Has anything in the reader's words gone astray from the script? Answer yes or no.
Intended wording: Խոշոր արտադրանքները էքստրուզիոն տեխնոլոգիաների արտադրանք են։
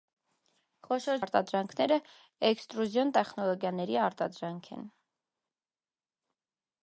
no